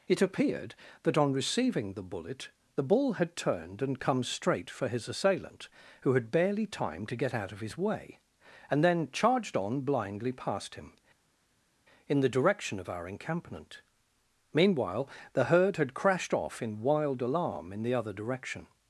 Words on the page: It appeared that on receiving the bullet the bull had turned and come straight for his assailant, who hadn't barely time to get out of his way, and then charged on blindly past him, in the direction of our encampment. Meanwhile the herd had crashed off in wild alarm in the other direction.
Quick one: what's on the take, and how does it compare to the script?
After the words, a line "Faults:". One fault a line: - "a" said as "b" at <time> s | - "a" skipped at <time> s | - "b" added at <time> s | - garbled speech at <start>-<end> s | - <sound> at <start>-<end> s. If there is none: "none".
It appeared that on receiving the bullet the bull had turned and come straight for his assailant, who had barely time to get out of his way, and then charged on blindly past him, in the direction of our encampment. Meanwhile the herd had crashed off in wild alarm in the other direction.
Faults:
- "hadn't" said as "had" at 6.1 s